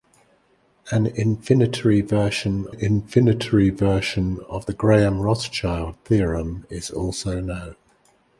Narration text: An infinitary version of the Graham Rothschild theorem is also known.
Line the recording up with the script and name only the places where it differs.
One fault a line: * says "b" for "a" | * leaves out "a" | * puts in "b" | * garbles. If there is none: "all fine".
* puts in "infinitary version"